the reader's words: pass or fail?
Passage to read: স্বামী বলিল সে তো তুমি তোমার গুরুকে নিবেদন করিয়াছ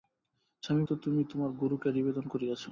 fail